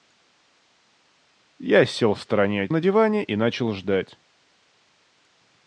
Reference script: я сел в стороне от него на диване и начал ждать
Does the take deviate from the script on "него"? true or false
true